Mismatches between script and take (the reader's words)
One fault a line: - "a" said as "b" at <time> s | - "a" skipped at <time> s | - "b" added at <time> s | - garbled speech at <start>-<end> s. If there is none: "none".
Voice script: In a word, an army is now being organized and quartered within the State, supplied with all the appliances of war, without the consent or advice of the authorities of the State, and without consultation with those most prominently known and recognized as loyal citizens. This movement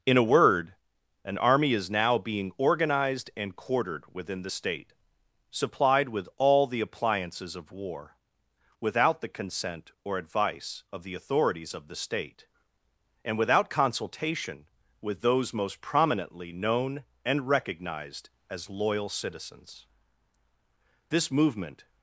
none